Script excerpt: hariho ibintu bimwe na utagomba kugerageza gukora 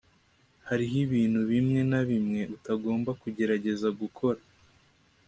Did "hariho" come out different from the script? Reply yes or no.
no